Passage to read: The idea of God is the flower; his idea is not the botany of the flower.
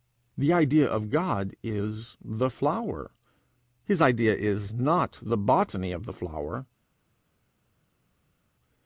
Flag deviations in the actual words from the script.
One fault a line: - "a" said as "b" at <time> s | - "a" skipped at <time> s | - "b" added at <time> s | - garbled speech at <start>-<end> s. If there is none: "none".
none